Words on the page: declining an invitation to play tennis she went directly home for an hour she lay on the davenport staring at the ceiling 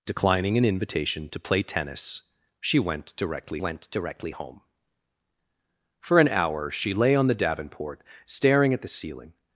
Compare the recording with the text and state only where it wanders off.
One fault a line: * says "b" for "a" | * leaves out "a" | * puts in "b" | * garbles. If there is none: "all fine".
* puts in "went directly"